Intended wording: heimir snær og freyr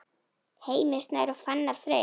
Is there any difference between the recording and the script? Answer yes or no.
yes